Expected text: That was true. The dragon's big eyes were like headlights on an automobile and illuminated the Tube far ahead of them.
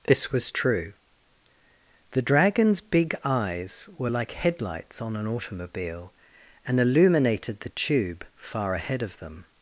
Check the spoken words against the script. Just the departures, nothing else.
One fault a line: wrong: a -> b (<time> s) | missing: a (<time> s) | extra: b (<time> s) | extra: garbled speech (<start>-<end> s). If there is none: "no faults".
wrong: That -> This (0.1 s)